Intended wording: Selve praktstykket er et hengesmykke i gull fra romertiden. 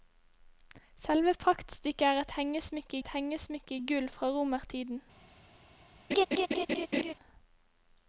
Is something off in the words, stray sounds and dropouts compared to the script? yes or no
yes